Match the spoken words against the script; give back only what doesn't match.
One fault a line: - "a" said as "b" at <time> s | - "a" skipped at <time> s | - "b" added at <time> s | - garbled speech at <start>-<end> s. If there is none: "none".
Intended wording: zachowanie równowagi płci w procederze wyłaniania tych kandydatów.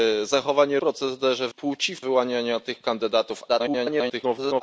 - "równowagi" said as "procederze" at 0.8 s
- "procederze" skipped at 2.0 s
- garbled speech at 3.5-4.6 s